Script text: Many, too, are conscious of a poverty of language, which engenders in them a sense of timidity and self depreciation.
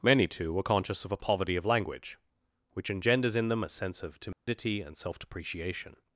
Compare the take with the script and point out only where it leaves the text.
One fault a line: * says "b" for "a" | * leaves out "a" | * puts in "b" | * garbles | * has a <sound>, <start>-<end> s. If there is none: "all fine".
* says "were" for "are"
* has a dropout, 4.3-4.5 s